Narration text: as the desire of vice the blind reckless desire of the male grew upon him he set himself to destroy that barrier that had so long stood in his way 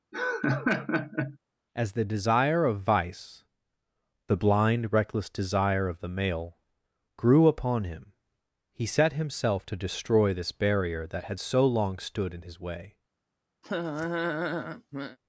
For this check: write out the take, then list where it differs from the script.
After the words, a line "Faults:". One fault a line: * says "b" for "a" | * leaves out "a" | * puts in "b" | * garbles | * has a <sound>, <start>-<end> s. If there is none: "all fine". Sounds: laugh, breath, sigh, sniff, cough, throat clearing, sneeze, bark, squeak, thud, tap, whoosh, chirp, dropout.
as the desire of vice the blind reckless desire of the male grew upon him he set himself to destroy this barrier that had so long stood in his way
Faults:
* has a laugh, 0.1-1.4 s
* says "this" for "that"
* has a laugh, 13.6-15.2 s